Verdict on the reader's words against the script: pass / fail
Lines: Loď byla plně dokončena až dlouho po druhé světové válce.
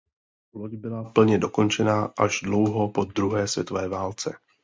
pass